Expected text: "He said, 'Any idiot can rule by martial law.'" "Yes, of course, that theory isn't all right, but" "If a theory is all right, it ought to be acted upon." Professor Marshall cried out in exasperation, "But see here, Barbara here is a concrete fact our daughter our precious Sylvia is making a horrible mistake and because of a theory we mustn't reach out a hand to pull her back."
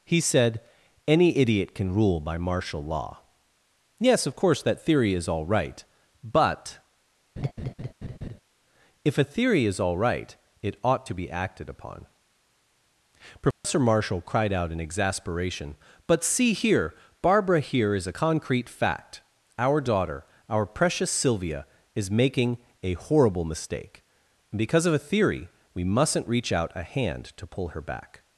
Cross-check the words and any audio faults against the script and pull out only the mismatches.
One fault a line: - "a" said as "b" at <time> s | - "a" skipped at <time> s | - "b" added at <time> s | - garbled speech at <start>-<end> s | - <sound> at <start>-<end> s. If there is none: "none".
- "isn't" said as "is" at 5.1 s
- laugh at 7.4-8.4 s
- dropout at 13.5-13.6 s